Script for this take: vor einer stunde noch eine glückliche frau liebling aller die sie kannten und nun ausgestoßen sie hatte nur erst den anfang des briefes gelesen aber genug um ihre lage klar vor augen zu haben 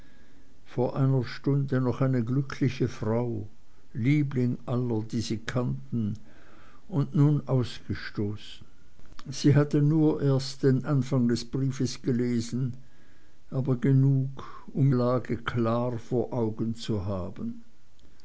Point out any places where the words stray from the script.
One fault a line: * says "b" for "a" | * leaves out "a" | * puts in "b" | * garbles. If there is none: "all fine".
* leaves out "ihre"